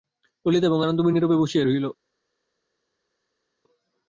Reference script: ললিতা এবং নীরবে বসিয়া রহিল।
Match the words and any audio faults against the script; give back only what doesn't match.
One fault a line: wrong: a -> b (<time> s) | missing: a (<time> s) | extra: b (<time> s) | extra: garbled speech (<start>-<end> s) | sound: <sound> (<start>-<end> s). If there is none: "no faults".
extra: আনন্দময়ী (0.8 s)